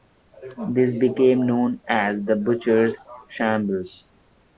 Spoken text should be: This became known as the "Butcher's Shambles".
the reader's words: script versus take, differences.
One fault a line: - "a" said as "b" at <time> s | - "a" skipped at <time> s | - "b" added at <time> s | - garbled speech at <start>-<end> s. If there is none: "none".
none